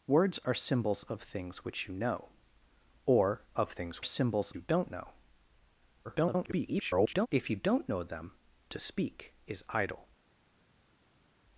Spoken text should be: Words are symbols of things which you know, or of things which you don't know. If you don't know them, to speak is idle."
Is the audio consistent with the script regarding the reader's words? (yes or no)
no